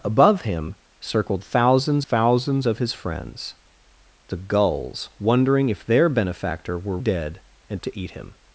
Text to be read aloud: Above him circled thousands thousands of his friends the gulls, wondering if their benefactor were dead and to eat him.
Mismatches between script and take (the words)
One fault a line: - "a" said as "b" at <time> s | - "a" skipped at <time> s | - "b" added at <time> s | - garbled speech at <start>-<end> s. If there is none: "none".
none